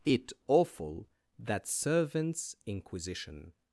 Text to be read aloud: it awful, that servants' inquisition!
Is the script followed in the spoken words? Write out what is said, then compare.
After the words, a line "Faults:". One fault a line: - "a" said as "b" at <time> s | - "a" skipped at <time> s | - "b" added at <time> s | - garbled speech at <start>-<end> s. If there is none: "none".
it awful, that servants' inquisition!
Faults:
none